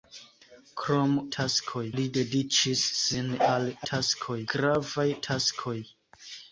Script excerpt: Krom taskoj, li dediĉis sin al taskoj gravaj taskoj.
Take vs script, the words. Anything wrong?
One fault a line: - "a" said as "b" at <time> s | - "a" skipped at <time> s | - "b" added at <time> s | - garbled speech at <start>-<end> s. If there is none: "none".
none